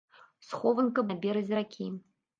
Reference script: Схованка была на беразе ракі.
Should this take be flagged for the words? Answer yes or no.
yes